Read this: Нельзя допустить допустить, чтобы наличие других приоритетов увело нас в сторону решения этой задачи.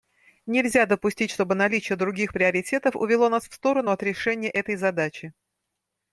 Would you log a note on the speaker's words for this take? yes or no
yes